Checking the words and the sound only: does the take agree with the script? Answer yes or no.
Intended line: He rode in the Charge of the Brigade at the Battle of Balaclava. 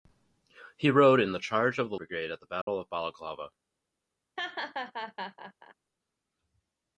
no